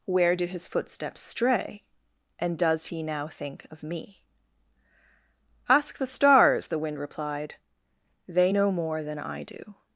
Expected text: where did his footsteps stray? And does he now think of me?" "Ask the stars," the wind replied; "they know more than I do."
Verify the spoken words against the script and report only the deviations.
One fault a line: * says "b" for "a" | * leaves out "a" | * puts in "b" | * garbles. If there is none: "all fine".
all fine